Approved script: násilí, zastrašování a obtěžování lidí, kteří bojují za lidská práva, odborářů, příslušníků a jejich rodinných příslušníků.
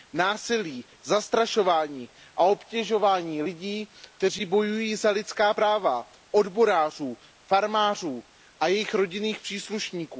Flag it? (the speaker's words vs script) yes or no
yes